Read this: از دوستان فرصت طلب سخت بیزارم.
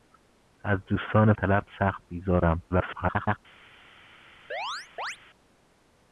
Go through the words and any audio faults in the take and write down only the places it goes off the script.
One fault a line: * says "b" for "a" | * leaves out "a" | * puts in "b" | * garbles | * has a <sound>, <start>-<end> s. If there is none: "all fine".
* leaves out "فرصت"
* garbles
* has a chirp, 4.5-5.2 s